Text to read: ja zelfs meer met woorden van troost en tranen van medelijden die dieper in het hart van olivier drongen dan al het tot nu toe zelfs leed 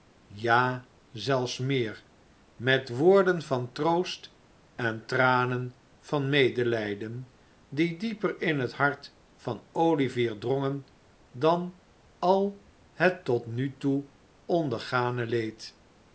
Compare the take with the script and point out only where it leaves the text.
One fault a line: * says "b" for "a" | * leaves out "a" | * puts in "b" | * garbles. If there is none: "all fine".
* says "ondergane" for "zelfs"